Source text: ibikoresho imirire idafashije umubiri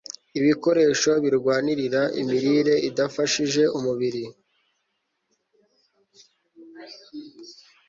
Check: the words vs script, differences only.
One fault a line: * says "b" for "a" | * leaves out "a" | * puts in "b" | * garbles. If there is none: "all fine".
* puts in "birwanirira"